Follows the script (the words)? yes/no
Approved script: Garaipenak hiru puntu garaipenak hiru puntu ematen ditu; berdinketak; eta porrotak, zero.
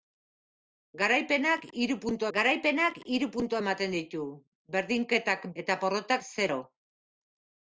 yes